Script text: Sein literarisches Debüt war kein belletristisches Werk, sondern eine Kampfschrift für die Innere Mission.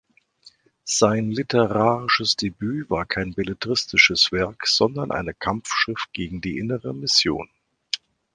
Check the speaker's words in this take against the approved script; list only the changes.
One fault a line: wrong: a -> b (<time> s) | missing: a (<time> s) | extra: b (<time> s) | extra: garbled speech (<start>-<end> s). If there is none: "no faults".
wrong: für -> gegen (6.1 s)